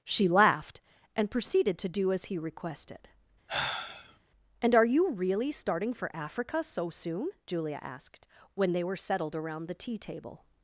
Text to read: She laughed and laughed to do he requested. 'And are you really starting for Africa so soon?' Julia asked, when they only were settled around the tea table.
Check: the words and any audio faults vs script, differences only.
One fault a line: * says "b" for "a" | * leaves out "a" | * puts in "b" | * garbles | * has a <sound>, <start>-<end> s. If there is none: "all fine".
* says "proceeded" for "laughed"
* puts in "as"
* has a sigh, 3.5-4.2 s
* leaves out "only"